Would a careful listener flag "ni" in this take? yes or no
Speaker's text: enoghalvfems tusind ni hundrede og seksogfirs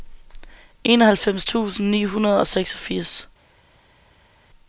no